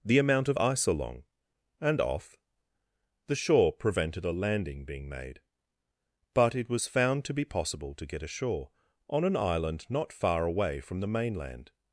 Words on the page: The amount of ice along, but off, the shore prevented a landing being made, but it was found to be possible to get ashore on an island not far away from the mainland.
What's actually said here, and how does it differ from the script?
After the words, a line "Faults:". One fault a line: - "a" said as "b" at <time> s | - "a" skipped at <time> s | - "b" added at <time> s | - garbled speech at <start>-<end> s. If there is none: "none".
The amount of ice along, and off, the shore prevented a landing being made, but it was found to be possible to get ashore on an island not far away from the mainland.
Faults:
- "but" said as "and" at 1.8 s